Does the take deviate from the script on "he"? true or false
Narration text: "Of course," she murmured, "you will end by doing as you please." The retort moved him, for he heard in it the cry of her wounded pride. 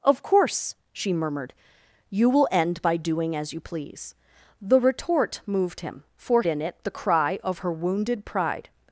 true